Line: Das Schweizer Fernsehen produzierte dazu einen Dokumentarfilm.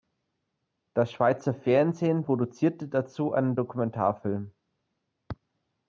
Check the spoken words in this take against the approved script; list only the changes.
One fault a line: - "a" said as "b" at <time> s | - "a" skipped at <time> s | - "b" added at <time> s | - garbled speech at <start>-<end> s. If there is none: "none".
none